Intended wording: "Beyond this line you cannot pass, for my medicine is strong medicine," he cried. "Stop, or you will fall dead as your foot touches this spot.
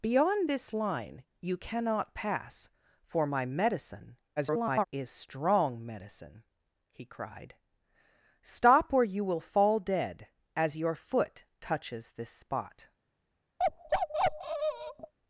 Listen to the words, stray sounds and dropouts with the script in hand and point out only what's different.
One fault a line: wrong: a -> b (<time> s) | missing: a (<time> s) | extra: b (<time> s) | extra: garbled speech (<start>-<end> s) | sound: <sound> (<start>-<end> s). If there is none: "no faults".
extra: garbled speech (4.4-4.9 s)
sound: bark (13.6-15.1 s)